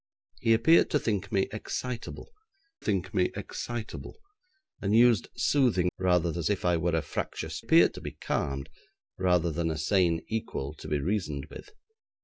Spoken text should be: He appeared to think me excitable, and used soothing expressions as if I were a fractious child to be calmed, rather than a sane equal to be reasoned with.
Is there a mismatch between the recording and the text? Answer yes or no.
yes